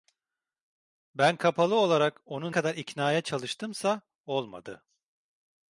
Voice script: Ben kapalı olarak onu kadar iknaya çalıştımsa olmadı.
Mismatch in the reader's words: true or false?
false